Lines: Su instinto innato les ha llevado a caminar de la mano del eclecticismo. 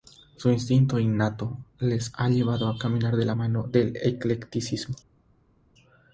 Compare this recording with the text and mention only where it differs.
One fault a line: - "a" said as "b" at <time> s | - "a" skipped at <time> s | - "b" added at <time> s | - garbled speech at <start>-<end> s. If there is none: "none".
none